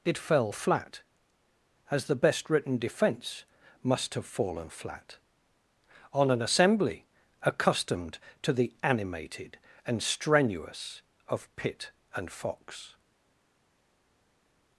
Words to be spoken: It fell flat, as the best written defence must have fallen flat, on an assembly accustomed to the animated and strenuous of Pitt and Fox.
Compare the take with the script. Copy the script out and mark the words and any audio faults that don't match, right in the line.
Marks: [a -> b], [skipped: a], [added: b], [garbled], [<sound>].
It fell flat, as the best written defence must have fallen flat, on an assembly accustomed to the animated and strenuous of Pitt and Fox.